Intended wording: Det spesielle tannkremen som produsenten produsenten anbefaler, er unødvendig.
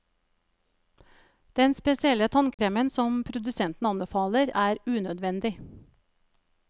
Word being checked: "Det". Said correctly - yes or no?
no